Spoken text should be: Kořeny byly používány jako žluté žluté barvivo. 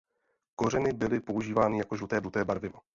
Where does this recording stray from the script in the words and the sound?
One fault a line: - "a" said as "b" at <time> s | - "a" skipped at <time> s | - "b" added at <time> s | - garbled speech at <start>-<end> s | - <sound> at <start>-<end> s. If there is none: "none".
none